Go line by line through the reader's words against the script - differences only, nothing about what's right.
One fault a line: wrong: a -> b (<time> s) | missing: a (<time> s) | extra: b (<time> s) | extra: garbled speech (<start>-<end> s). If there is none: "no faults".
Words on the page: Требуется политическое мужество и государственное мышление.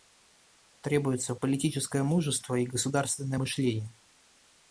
no faults